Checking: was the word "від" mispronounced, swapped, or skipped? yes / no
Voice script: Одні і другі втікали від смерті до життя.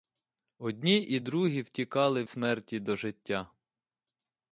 yes